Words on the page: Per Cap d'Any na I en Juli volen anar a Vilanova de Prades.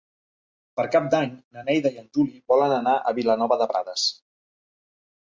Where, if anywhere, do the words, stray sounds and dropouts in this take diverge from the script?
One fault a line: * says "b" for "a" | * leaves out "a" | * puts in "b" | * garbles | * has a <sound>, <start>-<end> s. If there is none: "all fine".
* puts in "Neida"